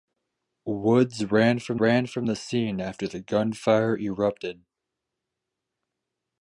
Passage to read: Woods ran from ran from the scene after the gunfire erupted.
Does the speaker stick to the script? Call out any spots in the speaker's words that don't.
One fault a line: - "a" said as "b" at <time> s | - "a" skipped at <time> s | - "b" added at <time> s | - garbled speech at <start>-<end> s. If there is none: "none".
none